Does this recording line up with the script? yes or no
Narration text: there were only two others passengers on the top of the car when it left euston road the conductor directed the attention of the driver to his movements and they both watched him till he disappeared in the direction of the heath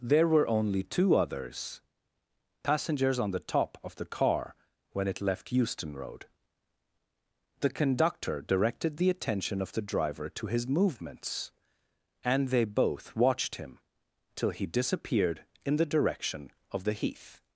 yes